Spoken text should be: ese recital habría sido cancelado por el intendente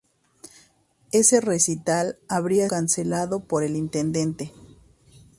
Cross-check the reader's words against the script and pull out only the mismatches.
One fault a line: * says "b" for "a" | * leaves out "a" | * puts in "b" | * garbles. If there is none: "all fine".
* leaves out "sido"